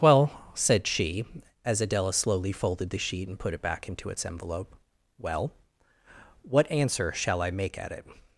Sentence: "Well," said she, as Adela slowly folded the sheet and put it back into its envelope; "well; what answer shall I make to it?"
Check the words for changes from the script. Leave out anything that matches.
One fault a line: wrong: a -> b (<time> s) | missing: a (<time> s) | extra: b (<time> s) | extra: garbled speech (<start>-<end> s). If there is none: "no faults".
wrong: to -> at (7.8 s)